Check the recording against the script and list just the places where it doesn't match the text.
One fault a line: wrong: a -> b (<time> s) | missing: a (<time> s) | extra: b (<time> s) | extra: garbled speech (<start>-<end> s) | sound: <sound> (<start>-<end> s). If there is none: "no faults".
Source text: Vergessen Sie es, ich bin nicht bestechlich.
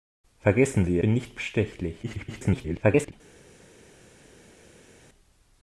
missing: es ich (1.0 s)
extra: garbled speech (2.0-3.1 s)